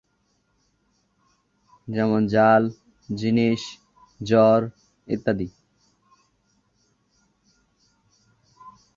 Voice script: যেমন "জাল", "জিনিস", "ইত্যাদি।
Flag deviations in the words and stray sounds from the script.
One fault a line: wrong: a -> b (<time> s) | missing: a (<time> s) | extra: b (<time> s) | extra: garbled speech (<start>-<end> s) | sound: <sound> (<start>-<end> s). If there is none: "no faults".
extra: জ্বর (4.2 s)